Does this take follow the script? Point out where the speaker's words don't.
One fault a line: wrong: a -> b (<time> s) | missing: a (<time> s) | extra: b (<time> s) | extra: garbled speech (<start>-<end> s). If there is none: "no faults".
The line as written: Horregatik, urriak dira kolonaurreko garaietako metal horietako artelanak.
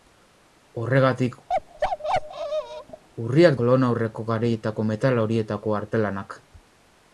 missing: dira (3.6 s)